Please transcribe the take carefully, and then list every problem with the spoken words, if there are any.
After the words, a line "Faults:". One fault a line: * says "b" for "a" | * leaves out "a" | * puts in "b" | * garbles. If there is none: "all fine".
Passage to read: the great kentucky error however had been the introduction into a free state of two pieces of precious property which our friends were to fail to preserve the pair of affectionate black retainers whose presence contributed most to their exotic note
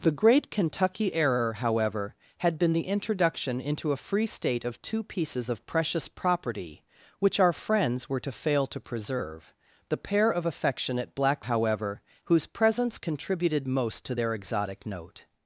the great kentucky error however had been the introduction into a free state of two pieces of precious property which our friends were to fail to preserve the pair of affectionate black however whose presence contributed most to their exotic note
Faults:
* says "however" for "retainers"